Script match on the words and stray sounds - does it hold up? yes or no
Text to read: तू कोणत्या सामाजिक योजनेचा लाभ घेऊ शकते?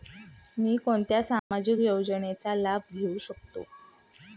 no